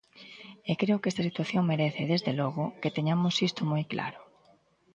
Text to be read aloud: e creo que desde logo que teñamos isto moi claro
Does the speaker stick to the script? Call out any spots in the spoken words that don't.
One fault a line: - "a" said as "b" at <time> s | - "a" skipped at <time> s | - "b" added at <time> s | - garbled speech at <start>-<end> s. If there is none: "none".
- "esta situación merece" added at 1.1 s